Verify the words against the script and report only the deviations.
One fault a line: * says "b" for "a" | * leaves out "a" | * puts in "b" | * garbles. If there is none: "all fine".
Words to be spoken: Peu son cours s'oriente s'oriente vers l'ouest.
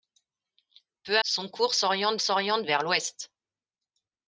all fine